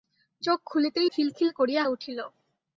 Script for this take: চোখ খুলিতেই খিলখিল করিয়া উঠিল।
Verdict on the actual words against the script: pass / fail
pass